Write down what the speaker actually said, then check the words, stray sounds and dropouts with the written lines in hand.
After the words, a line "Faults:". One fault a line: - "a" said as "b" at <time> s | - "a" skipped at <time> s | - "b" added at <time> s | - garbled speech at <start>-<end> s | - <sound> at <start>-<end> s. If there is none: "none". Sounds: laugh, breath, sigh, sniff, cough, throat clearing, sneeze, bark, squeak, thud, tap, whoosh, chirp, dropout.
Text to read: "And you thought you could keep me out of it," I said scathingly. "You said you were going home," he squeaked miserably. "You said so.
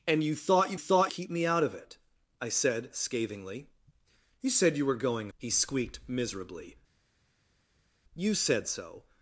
"And you thought you thought keep me out of it," I said scathingly. "You said you were going," he squeaked miserably. "You said so.
Faults:
- "could" said as "thought" at 0.8 s
- "home" skipped at 5.3 s